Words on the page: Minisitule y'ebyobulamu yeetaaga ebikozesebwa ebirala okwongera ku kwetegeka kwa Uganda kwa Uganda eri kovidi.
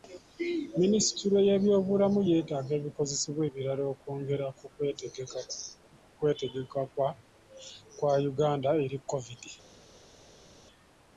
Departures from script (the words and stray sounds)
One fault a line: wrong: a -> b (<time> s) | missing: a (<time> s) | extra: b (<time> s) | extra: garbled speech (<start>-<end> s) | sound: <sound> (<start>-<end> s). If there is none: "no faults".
missing: kwa Uganda (8.7 s)